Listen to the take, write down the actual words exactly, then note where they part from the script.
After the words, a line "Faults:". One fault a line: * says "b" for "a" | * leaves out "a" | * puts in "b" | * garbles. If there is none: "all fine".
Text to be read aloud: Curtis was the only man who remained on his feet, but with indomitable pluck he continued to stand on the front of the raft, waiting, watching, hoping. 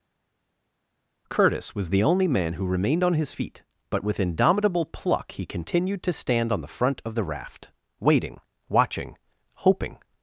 Curtis was the only man who remained on his feet, but with indomitable pluck he continued to stand on the front of the raft, waiting, watching, hoping.
Faults:
all fine